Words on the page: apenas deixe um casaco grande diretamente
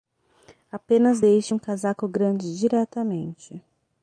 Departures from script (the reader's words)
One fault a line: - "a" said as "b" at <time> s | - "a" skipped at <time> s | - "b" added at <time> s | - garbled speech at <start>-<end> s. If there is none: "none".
none